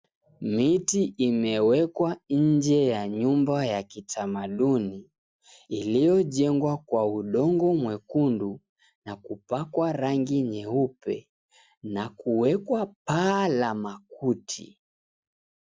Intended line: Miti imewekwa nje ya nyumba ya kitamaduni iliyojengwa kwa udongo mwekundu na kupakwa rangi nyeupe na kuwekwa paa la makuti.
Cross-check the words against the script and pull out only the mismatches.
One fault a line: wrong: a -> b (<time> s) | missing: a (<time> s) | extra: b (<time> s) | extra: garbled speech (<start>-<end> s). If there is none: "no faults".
no faults